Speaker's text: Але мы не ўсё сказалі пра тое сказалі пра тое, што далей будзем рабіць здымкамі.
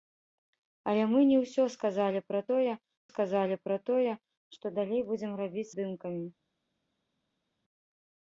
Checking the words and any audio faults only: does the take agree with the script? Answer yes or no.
yes